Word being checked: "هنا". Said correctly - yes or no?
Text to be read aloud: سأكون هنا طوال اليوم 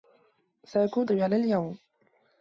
no